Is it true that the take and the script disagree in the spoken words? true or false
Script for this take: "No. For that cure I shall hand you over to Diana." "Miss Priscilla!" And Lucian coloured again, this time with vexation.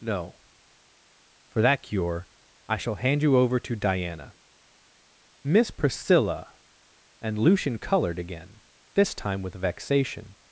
false